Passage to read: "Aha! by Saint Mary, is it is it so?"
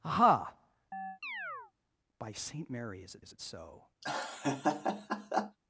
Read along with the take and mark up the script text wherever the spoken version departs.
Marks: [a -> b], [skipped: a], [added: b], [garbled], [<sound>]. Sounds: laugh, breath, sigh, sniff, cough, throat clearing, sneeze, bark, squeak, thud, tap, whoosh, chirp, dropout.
"Aha! [chirp] by Saint Mary, is it is it so?" [laugh]